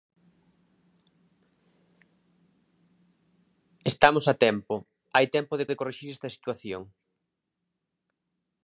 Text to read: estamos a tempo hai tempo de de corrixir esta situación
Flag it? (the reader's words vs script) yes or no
no